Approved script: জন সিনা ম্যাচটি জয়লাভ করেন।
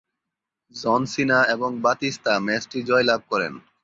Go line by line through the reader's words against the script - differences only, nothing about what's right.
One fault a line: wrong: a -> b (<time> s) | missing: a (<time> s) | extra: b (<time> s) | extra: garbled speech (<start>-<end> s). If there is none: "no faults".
extra: এবং বাতিস্তা (1.5 s)